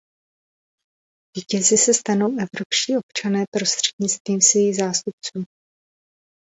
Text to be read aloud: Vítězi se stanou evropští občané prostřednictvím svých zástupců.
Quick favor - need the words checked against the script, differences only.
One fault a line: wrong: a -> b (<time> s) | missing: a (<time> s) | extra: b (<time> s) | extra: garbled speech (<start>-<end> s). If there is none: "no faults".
no faults